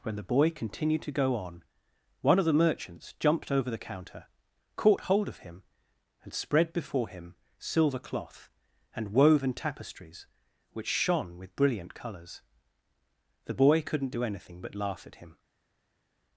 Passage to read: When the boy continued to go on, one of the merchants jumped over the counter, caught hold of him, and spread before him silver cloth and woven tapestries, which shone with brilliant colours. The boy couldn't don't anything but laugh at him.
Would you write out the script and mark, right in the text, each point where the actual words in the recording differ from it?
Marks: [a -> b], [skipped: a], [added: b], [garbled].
When the boy continued to go on, one of the merchants jumped over the counter, caught hold of him, and spread before him silver cloth and woven tapestries, which shone with brilliant colours. The boy couldn't [don't -> do] anything but laugh at him.